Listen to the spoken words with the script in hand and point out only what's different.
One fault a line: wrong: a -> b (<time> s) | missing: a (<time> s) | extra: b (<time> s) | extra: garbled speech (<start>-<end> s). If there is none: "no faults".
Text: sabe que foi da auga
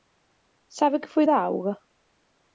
no faults